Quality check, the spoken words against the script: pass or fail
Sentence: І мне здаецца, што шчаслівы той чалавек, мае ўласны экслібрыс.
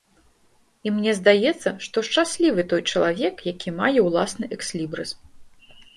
fail